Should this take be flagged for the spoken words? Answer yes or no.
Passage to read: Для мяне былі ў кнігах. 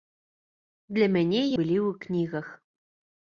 no